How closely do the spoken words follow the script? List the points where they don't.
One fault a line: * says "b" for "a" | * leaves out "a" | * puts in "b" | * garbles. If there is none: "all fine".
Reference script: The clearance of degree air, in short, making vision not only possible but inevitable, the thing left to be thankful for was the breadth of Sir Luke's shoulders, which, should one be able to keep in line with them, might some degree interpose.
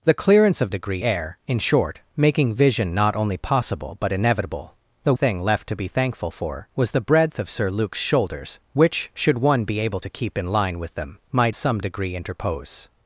all fine